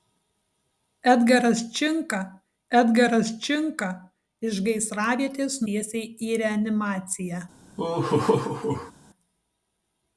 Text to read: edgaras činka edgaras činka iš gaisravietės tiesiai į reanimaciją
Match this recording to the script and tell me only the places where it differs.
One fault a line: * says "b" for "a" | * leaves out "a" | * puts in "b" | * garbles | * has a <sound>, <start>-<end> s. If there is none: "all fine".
* has a laugh, 7.8-8.9 s